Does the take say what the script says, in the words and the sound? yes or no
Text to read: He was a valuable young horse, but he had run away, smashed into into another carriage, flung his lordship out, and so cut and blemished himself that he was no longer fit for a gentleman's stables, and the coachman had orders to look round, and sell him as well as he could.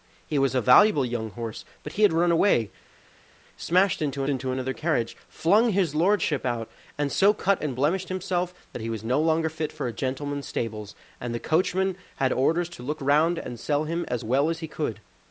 yes